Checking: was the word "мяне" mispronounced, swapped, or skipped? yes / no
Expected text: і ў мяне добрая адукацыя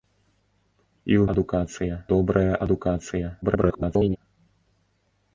yes